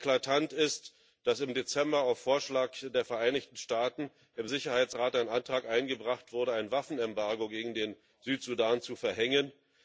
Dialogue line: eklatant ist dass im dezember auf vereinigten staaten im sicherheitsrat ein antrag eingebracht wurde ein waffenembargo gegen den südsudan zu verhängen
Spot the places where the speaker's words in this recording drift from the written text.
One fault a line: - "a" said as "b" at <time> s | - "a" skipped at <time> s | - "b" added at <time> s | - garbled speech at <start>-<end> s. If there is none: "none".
- "vorschlag der" added at 2.2 s